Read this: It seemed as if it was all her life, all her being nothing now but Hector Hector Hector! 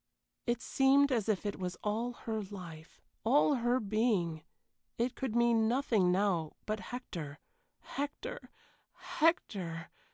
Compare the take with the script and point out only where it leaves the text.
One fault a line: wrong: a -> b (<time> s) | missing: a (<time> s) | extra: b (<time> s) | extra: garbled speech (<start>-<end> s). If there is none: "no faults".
extra: it could mean (5.0 s)